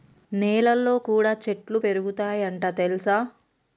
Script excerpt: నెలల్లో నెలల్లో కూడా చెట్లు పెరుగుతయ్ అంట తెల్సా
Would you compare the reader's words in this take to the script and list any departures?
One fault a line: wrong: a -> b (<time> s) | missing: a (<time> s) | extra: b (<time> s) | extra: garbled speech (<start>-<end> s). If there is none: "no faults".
missing: నెలల్లో (0.9 s)